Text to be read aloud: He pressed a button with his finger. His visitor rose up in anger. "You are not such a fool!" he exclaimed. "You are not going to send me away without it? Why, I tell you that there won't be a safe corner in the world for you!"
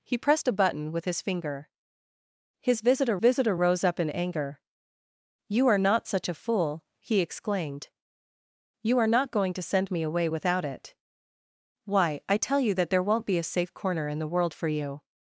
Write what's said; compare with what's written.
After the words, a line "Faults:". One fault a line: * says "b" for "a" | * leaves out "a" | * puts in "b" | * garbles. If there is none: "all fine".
He pressed a button with his finger. His visitor visitor rose up in anger. "You are not such a fool!" he exclaimed. "You are not going to send me away without it? Why, I tell you that there won't be a safe corner in the world for you!"
Faults:
* puts in "visitor"